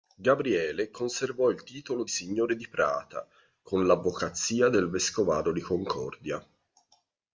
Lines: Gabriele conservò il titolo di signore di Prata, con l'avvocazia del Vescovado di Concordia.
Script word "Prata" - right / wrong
right